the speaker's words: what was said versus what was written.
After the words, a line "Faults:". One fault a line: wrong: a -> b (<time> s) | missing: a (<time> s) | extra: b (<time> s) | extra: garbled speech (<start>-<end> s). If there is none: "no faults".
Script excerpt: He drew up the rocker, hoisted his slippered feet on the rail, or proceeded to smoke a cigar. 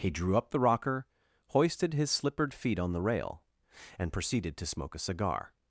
He drew up the rocker, hoisted his slippered feet on the rail, and proceeded to smoke a cigar.
Faults:
wrong: or -> and (4.0 s)